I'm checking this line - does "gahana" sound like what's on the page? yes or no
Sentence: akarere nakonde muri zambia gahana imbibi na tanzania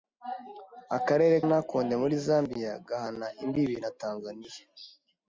yes